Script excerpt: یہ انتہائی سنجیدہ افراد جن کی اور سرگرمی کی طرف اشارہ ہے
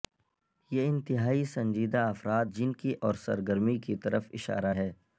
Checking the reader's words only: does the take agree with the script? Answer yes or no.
yes